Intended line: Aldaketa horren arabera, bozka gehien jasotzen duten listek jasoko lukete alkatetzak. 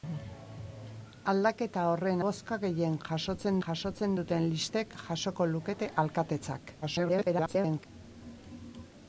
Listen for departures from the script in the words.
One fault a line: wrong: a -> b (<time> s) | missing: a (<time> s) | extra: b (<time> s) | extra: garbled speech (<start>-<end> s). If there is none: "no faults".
missing: arabera (2.2 s)
extra: jasotzen (3.6 s)
extra: garbled speech (6.8-7.9 s)